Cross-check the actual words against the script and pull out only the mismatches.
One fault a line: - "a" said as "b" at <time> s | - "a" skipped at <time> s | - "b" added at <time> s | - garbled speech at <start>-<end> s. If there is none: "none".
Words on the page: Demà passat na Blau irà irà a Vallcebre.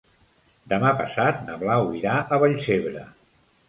- "irà" skipped at 2.2 s